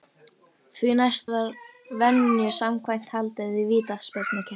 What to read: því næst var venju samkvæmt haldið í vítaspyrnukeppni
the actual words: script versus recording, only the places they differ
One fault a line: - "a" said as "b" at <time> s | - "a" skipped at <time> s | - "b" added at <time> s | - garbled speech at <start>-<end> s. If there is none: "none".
none